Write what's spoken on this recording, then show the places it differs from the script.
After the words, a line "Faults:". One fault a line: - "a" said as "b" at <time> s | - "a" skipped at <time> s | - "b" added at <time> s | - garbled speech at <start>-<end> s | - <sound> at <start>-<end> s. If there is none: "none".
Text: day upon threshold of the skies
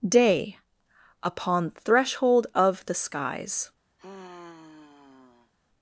day upon threshold of the skies
Faults:
- sigh at 4.0-5.5 s